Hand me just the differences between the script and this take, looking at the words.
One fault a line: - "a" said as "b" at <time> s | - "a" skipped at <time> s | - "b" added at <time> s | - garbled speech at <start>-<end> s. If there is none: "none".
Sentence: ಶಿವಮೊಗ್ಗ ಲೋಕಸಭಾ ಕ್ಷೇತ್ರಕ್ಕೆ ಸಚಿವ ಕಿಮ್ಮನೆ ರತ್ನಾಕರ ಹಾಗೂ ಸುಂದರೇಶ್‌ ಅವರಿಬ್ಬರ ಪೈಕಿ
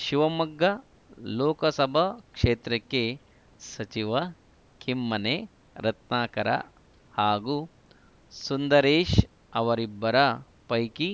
none